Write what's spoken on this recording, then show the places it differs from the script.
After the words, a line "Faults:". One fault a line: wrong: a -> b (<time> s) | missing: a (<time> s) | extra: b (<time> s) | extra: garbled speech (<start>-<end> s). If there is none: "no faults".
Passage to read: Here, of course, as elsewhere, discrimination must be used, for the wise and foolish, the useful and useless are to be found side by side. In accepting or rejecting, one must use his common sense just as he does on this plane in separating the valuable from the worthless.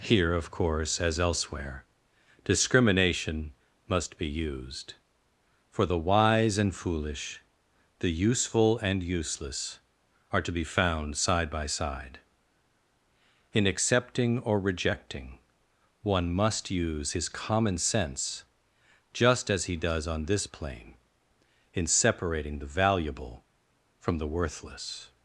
Here, of course, as elsewhere, discrimination must be used, for the wise and foolish, the useful and useless are to be found side by side. In accepting or rejecting, one must use his common sense just as he does on this plane in separating the valuable from the worthless.
Faults:
no faults